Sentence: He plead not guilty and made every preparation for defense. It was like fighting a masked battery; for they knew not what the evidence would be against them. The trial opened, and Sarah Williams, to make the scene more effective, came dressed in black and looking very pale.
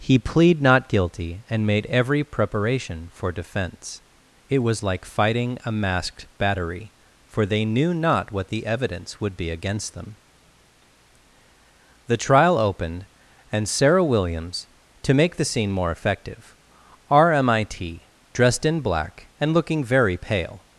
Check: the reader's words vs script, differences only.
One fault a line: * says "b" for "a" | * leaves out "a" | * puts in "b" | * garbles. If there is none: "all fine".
* says "rmit" for "came"